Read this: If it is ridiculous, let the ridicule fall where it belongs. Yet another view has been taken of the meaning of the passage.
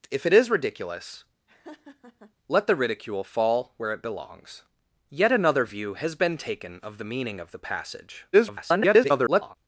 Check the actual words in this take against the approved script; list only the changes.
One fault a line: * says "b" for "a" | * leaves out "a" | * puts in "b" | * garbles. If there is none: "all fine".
* garbles